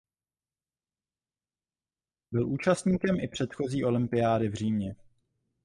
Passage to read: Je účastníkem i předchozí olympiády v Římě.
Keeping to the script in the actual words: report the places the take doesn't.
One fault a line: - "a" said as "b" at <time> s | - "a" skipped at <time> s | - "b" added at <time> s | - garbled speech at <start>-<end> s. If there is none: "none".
- "Je" said as "Byl" at 2.3 s